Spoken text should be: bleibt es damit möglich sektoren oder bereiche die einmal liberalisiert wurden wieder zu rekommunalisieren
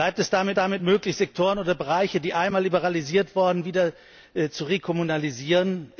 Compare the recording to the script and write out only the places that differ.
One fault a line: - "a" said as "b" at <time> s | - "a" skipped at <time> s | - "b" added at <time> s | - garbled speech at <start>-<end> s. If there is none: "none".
- "damit" added at 0.6 s